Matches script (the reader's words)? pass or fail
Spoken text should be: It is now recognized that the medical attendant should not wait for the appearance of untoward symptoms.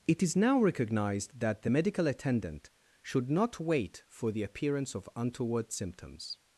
pass